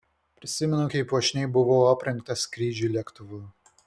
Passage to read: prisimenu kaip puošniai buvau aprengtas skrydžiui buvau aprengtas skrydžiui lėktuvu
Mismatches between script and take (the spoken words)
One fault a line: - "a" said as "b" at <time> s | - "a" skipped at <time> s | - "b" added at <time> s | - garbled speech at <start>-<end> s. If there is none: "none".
- "buvau aprengtas skrydžiui" skipped at 2.9 s